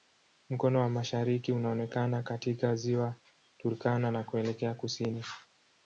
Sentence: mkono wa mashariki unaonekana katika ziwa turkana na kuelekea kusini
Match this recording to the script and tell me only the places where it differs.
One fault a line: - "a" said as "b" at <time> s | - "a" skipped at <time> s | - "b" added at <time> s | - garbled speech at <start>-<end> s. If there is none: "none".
none